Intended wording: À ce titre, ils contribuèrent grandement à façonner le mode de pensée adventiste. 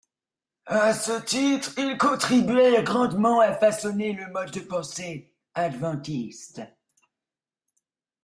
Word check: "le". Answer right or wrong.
right